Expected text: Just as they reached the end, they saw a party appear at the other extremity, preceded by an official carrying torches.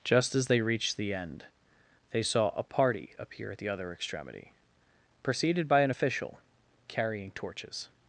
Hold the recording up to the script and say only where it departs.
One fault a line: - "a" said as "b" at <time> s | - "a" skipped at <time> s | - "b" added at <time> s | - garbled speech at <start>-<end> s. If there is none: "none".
none